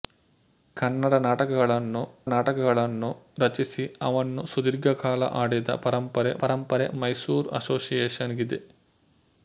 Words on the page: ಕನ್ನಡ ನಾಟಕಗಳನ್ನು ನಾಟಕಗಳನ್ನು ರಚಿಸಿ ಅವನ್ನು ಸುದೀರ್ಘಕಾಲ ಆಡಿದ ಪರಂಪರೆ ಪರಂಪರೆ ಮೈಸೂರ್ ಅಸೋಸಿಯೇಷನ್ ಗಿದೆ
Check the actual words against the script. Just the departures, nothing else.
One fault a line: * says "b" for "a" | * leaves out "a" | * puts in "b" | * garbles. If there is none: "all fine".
all fine